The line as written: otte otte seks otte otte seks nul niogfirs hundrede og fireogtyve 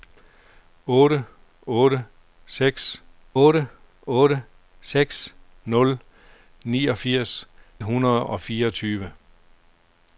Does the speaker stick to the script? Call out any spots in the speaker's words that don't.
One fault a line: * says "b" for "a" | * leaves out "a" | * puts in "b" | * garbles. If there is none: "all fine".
all fine